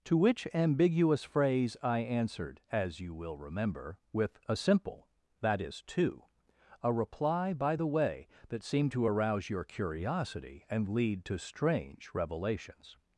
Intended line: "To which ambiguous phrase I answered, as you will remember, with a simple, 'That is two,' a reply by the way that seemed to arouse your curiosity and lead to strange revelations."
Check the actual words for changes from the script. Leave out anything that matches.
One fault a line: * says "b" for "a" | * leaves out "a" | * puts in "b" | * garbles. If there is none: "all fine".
all fine